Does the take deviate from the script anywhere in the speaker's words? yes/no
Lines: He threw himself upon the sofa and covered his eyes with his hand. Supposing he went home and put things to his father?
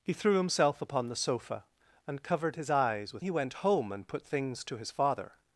yes